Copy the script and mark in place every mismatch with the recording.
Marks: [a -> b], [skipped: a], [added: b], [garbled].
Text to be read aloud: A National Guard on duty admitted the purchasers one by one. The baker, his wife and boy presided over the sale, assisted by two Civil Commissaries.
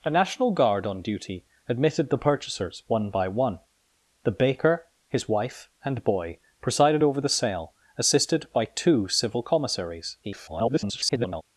A National Guard on duty admitted the purchasers one by one. The baker, his wife and boy presided over the sale, assisted by two Civil Commissaries. [garbled]